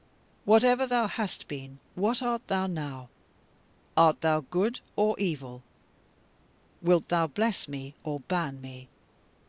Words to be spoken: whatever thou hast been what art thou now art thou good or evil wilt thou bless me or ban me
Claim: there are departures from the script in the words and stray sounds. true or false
false